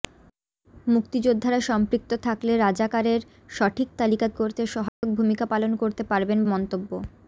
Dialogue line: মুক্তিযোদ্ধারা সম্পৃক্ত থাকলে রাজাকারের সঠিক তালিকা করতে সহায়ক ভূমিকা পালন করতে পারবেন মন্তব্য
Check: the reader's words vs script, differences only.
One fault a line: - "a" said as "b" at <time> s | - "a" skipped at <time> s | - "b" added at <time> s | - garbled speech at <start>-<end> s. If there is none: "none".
none